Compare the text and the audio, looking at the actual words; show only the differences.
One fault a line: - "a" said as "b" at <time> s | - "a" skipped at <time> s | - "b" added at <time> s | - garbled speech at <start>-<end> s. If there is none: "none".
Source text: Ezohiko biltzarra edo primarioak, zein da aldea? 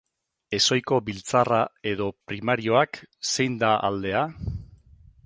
none